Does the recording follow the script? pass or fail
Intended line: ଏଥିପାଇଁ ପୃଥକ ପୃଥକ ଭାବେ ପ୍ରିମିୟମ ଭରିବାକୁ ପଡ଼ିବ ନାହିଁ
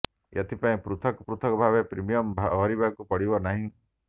pass